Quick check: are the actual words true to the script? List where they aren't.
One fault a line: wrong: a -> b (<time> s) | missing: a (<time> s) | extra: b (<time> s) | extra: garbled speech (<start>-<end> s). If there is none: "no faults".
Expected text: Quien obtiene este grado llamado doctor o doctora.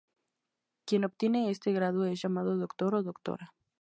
extra: es (2.0 s)